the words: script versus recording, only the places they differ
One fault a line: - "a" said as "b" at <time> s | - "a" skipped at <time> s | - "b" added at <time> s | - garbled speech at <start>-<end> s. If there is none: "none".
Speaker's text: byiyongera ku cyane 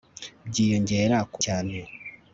none